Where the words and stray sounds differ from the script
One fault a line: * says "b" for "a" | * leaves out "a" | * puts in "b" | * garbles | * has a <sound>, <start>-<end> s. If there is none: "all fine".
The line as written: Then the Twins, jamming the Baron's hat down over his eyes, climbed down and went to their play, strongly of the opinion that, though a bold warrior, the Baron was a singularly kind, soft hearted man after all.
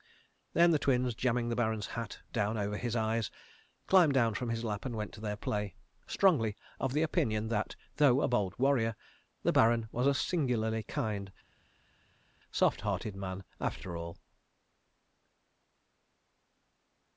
* puts in "from his lap"